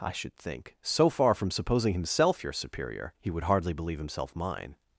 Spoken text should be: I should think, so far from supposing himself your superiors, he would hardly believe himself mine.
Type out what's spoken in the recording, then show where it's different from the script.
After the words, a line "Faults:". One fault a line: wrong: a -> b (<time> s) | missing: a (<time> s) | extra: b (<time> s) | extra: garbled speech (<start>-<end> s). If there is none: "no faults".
I should think, so far from supposing himself your superior, he would hardly believe himself mine.
Faults:
wrong: superiors -> superior (2.5 s)